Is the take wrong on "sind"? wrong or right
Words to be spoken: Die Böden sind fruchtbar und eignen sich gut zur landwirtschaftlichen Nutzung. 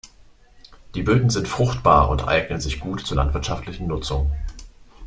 right